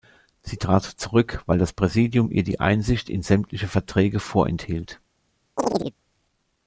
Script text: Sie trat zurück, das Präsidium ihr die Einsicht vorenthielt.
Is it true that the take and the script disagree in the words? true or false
true